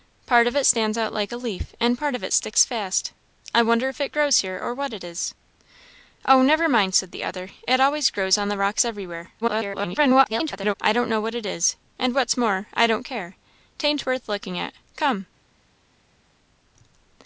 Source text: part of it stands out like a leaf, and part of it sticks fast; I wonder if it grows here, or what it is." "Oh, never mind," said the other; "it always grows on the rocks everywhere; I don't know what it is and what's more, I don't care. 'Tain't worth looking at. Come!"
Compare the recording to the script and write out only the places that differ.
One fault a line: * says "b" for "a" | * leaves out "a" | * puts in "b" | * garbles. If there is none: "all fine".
* garbles